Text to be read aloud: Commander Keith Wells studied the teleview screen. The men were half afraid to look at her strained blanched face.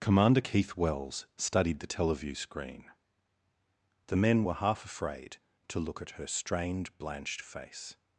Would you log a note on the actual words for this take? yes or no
no